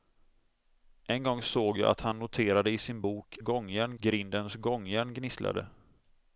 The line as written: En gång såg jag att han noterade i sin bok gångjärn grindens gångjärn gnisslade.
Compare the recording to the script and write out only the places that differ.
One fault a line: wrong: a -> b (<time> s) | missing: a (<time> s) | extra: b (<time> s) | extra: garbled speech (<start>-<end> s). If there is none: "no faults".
no faults